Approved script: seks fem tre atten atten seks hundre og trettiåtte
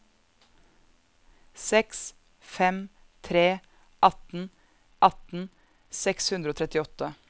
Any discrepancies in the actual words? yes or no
no